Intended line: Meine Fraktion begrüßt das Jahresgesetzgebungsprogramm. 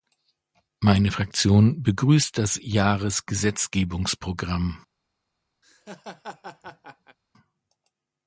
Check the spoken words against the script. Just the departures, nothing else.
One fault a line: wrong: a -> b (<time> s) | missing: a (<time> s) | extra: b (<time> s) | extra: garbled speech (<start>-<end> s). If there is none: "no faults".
no faults